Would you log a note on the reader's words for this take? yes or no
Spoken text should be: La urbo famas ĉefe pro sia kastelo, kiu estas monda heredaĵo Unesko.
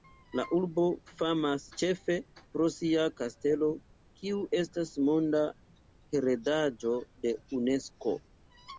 yes